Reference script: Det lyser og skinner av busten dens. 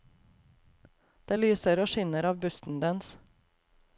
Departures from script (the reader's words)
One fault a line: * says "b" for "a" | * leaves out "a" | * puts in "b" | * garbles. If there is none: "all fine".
all fine